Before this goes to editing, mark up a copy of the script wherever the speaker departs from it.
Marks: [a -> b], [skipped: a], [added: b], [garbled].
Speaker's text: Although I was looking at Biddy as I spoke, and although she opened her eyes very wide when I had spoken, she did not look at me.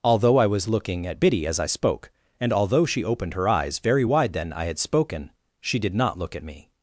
Although I was looking at Biddy as I spoke, and although she opened her eyes very wide [when -> then] I had spoken, she did not look at me.